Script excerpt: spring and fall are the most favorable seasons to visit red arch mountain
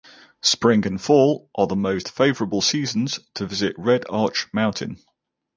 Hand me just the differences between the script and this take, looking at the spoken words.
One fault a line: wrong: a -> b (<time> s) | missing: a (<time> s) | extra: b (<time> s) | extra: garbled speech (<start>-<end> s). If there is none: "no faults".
no faults